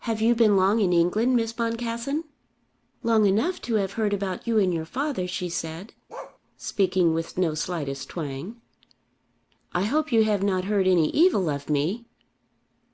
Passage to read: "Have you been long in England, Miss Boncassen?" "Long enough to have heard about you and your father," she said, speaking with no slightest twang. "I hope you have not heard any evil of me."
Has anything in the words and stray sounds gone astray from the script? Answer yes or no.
yes